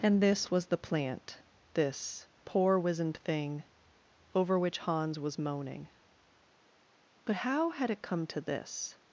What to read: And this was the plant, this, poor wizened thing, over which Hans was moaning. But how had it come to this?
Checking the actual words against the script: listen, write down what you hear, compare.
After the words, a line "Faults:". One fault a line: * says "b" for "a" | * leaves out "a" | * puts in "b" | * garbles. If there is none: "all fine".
And this was the plant, this, poor wizened thing, over which Hans was moaning. But how had it come to this?
Faults:
all fine